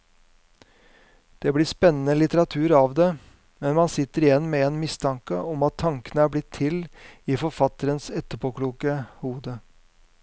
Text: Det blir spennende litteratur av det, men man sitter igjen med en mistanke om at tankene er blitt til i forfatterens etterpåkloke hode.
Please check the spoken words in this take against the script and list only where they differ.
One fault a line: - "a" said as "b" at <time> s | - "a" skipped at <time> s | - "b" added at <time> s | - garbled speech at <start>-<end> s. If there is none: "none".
none